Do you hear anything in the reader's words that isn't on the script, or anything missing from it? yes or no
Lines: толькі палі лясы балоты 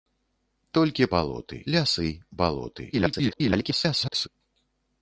yes